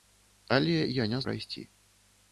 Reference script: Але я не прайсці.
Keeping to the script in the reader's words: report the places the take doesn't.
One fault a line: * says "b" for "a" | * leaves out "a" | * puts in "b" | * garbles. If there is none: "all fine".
all fine